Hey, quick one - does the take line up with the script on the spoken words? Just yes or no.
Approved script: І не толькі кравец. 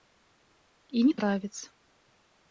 no